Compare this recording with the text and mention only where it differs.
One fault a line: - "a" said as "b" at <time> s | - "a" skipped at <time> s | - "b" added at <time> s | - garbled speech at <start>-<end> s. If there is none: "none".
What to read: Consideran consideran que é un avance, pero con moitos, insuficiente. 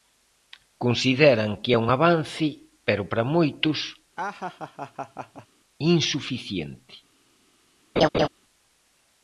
- "consideran" skipped at 1.5 s
- "con" said as "para" at 3.1 s